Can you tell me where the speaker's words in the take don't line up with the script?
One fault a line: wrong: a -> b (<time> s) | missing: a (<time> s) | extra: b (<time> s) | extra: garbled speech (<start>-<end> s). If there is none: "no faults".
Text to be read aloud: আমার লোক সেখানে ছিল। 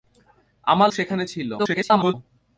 missing: লোক (0.9 s)
extra: garbled speech (1.6-2.1 s)